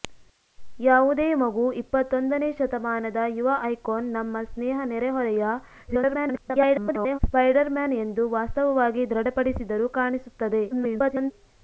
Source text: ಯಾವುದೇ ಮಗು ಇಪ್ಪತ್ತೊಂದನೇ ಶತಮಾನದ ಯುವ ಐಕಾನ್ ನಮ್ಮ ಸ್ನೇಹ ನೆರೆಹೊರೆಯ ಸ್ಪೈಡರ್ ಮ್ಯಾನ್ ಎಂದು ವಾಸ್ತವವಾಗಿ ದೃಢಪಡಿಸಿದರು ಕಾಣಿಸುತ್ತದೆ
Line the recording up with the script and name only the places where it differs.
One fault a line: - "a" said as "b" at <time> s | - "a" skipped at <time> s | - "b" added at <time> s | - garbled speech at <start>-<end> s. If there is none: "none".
- garbled speech at 5.9-7.2 s
- garbled speech at 10.7-11.3 s